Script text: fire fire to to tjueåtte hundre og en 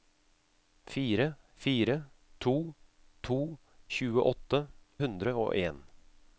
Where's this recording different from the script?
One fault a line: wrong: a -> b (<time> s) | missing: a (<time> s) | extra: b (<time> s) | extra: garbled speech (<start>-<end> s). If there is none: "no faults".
no faults